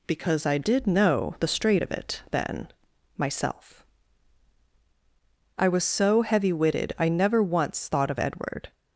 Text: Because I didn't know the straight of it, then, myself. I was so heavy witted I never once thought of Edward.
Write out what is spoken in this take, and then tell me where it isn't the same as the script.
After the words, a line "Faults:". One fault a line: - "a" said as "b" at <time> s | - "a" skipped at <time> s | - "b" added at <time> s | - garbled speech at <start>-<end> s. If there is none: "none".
Because I did know the straight of it, then, myself. I was so heavy witted I never once thought of Edward.
Faults:
- "didn't" said as "did" at 0.6 s